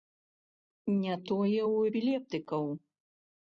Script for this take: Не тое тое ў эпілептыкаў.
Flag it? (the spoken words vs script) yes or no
yes